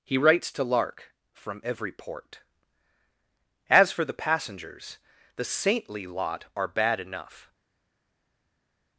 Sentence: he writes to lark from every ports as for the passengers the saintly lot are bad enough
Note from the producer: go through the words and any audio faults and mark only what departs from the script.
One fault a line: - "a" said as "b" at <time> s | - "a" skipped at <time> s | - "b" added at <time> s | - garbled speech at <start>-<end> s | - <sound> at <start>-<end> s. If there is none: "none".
- "ports" said as "port" at 1.9 s